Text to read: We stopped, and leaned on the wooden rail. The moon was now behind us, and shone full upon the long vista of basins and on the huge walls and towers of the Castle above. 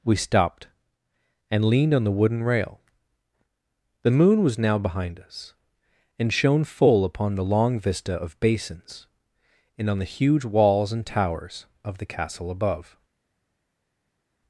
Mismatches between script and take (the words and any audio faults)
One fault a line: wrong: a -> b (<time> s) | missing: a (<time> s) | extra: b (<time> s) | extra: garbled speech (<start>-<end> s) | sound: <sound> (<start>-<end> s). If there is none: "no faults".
no faults